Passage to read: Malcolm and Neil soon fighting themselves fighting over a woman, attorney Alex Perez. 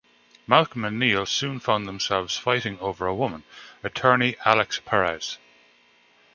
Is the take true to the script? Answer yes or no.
no